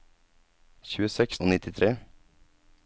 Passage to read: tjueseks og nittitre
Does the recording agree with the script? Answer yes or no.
yes